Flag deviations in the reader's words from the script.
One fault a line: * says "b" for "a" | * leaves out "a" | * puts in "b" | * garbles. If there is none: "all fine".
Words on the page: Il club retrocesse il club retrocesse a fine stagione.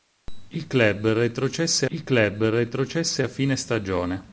all fine